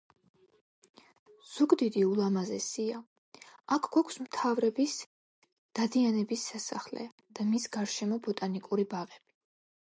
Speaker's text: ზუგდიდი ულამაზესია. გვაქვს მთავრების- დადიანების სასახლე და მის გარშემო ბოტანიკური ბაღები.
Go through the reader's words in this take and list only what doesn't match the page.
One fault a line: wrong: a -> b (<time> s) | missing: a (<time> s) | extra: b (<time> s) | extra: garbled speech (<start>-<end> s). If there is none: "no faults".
extra: აქ (3.8 s)